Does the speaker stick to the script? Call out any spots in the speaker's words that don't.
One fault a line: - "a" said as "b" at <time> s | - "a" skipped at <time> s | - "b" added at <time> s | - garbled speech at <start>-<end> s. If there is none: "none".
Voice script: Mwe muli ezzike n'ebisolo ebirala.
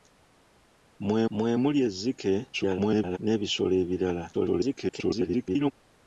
- "mwe" added at 1.4 s
- garbled speech at 2.5-3.2 s
- garbled speech at 4.3-5.7 s